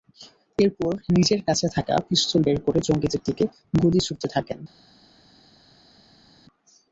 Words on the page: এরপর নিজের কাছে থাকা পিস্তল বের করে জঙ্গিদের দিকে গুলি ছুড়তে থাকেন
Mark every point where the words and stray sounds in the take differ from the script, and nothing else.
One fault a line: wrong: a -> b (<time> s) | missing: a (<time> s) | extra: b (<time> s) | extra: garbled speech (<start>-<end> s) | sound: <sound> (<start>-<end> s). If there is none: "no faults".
no faults